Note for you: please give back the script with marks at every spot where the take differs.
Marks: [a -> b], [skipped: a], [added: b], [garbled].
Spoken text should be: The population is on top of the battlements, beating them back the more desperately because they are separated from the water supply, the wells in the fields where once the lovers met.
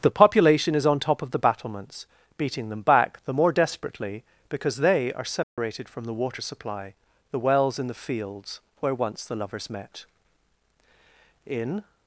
The population is on top of the battlements, beating them back the more desperately because they are separated from the water supply, the wells in the fields where once the lovers met. [added: In]